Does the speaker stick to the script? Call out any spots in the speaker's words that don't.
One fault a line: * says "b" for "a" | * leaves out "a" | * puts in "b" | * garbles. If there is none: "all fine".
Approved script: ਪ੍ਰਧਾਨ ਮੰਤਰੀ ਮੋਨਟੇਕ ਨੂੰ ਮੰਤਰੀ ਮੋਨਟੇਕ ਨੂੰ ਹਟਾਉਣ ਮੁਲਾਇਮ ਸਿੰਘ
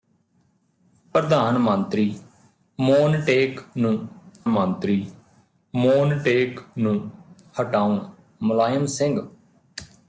all fine